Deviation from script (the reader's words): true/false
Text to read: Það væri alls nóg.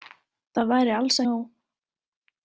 false